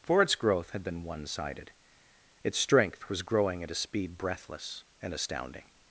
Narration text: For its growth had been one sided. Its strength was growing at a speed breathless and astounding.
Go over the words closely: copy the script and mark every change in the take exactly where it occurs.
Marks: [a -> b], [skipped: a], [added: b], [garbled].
For its growth had been one sided. Its strength was growing at a speed breathless and astounding.